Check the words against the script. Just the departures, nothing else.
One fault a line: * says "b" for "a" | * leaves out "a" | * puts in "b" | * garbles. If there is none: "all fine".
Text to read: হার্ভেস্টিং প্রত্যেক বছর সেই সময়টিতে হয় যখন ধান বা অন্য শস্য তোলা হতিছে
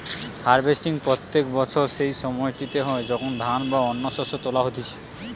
all fine